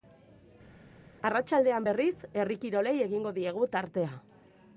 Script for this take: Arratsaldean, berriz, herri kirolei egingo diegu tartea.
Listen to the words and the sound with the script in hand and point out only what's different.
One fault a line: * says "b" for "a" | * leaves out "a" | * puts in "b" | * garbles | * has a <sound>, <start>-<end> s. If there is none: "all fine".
all fine